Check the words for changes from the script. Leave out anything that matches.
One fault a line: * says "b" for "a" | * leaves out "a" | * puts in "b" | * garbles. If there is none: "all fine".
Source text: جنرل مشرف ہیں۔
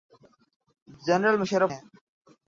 all fine